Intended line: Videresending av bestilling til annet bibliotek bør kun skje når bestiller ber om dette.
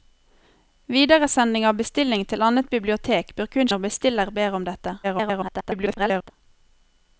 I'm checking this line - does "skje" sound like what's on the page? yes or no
no